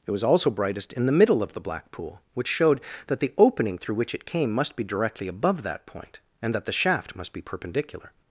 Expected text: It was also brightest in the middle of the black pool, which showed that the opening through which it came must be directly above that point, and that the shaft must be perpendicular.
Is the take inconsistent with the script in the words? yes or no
no